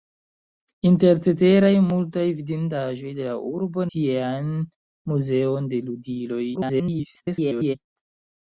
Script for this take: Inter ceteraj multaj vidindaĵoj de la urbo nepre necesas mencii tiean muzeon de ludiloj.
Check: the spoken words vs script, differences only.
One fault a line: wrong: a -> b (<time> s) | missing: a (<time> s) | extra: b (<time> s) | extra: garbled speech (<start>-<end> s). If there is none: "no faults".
missing: nepre necesas mencii (3.9 s)
extra: garbled speech (6.5-7.8 s)